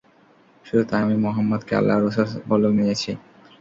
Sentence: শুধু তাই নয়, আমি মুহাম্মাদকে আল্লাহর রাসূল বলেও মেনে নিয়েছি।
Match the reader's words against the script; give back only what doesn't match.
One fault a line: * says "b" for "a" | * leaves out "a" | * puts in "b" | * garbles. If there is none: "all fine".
* leaves out "নয়"
* leaves out "মেনে"